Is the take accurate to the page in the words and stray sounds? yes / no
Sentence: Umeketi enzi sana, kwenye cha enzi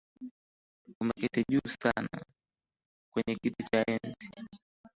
no